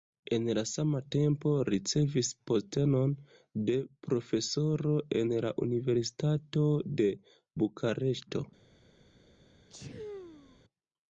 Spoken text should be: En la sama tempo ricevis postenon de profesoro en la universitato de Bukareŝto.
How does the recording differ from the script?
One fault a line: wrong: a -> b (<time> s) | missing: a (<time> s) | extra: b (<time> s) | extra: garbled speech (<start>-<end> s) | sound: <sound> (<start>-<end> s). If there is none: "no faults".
sound: sneeze (9.7-10.6 s)